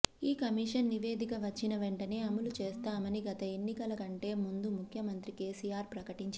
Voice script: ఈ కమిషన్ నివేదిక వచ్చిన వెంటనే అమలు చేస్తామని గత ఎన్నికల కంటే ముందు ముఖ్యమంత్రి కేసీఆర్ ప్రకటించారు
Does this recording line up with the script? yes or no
yes